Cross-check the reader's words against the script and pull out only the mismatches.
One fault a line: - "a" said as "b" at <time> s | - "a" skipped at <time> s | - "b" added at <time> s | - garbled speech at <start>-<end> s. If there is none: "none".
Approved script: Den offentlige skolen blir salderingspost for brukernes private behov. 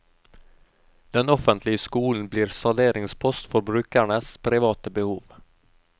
none